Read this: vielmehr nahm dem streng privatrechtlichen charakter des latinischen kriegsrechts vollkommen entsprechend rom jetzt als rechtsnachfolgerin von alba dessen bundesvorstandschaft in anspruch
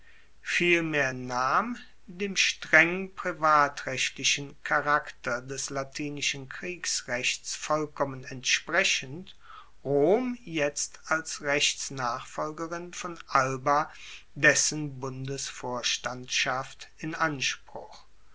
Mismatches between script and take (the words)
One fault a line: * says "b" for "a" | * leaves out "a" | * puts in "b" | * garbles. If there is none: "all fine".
all fine